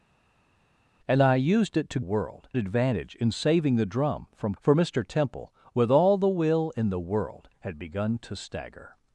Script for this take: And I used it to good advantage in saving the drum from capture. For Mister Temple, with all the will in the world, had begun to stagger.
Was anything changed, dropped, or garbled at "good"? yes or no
yes